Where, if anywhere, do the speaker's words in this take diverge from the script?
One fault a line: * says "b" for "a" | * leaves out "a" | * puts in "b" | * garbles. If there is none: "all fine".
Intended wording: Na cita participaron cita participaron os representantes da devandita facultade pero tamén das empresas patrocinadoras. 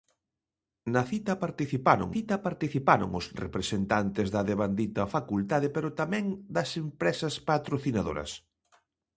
all fine